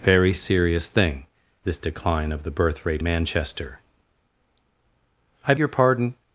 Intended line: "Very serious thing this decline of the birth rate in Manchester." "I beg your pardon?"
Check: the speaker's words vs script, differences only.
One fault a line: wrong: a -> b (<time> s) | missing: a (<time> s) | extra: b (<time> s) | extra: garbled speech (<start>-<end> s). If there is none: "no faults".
missing: in (3.0 s)
missing: beg (5.5 s)